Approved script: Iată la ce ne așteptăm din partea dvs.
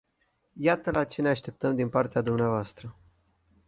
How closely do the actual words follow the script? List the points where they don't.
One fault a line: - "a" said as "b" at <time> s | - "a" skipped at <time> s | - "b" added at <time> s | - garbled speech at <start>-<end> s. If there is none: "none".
none